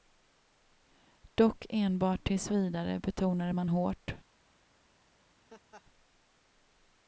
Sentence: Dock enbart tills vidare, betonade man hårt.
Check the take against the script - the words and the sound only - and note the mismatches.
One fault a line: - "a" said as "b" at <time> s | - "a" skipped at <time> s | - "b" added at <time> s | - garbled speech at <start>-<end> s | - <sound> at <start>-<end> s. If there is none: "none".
- laugh at 5.5-5.8 s